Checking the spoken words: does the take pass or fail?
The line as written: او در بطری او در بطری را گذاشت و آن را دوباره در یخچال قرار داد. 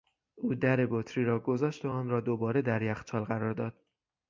fail